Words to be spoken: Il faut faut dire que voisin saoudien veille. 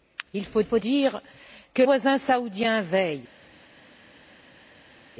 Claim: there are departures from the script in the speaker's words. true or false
false